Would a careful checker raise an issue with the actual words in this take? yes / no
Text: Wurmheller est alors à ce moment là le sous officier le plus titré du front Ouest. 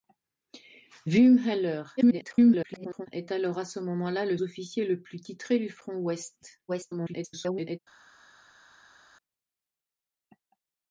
yes